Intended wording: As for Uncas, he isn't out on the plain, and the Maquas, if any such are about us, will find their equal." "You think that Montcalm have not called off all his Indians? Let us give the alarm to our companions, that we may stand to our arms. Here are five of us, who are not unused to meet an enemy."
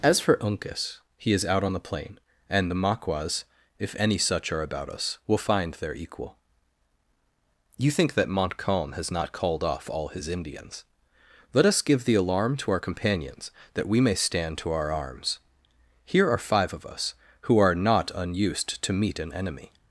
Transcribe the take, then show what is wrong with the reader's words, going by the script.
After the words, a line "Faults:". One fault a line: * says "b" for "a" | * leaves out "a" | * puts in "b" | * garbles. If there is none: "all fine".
As for Uncas, he is out on the plain, and the Maquas, if any such are about us, will find their equal." "You think that Montcalm has not called off all his Indians? Let us give the alarm to our companions, that we may stand to our arms. Here are five of us, who are not unused to meet an enemy."
Faults:
* says "is" for "isn't"
* says "has" for "have"